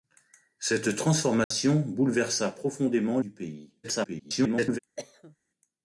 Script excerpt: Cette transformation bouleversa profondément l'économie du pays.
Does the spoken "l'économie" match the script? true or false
false